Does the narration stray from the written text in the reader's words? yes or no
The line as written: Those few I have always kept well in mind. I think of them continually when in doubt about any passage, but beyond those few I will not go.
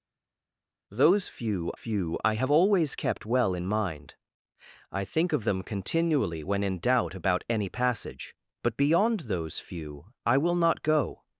yes